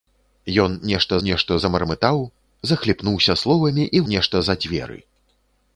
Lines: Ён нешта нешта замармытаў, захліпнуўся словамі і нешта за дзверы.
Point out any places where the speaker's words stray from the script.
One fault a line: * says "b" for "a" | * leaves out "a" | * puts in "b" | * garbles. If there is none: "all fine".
all fine